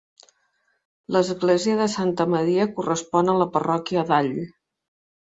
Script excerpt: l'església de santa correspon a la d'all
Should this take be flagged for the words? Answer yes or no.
yes